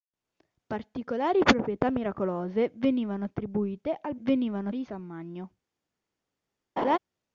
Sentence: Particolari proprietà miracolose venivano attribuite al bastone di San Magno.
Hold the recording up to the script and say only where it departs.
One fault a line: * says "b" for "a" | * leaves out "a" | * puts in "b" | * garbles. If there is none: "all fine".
* says "venivano" for "bastone"